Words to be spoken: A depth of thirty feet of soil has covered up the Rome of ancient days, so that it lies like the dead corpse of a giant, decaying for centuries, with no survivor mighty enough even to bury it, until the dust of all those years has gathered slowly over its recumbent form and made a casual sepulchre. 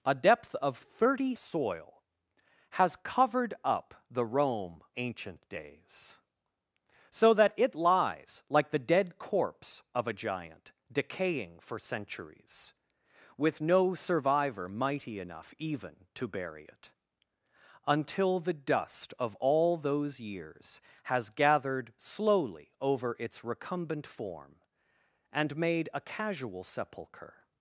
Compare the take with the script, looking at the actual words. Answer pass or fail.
fail